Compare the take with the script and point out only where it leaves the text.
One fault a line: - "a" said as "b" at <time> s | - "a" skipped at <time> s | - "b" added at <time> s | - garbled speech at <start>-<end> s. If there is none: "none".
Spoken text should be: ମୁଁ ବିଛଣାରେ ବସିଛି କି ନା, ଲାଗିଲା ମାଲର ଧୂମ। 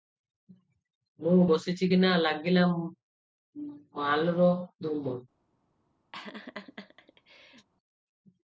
- "ବିଛଣାରେ" skipped at 1.4 s